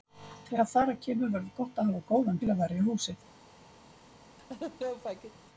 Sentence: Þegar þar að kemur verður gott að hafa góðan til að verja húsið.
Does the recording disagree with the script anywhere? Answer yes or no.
no